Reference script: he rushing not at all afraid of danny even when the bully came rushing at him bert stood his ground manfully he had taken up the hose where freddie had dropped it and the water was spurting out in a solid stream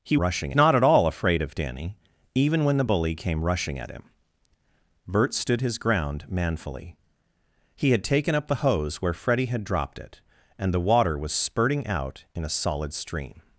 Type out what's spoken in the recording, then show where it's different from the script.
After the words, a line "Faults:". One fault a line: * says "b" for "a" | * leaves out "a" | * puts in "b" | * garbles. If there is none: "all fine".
he rushing not at all afraid of danny even when the bully came rushing at him bert stood his ground manfully he had taken up the hose where freddie had dropped it and the water was spurting out in a solid stream
Faults:
all fine